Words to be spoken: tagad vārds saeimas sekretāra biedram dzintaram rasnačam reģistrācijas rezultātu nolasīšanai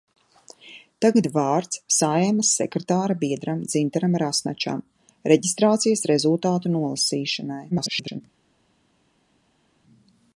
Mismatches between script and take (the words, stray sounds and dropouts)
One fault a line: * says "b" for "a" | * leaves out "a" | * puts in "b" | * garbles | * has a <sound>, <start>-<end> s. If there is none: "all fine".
* garbles